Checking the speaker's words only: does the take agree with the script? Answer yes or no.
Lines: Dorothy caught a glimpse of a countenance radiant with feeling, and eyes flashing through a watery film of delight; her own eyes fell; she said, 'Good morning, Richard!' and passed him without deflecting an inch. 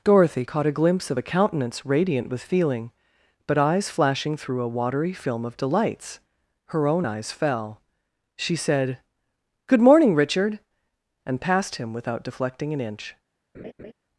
no